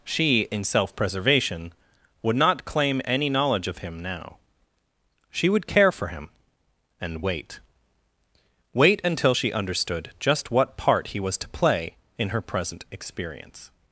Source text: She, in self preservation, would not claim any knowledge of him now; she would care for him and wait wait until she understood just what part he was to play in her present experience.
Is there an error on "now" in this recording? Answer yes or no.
no